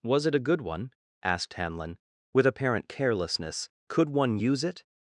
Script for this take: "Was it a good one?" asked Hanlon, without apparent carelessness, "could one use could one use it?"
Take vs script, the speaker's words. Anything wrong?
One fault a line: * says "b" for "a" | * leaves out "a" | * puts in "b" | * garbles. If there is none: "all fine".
* says "with" for "without"
* leaves out "could one use"